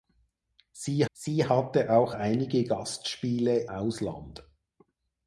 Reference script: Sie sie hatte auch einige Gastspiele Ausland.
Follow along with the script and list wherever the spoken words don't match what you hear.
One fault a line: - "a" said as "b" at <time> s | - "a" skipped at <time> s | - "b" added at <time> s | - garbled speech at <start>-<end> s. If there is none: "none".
none